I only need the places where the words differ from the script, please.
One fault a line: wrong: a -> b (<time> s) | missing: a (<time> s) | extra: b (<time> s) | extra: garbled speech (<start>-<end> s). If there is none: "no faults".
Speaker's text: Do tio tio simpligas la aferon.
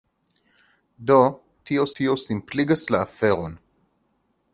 no faults